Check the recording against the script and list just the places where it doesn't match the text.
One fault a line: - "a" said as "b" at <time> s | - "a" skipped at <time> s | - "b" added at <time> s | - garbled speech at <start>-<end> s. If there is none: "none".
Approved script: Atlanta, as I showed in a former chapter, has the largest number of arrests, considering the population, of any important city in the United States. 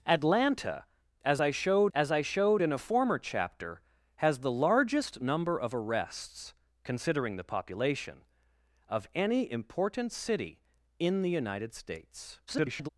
- "as I showed" added at 1.9 s
- garbled speech at 12.5-12.9 s